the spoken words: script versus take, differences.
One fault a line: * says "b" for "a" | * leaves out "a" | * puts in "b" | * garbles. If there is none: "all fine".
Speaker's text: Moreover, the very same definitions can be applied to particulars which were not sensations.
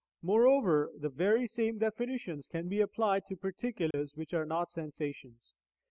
* says "are" for "were"